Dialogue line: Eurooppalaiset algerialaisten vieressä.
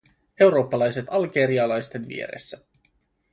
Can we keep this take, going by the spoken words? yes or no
yes